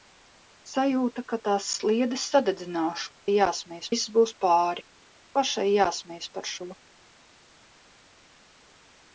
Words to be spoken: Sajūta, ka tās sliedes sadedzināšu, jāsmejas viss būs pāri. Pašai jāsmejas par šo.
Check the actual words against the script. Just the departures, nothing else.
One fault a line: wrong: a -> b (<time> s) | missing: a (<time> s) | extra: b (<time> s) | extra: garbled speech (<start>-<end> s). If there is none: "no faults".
no faults